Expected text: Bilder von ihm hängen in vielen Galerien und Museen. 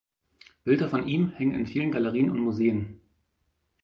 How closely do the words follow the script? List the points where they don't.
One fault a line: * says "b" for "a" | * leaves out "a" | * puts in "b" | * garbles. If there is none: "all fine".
all fine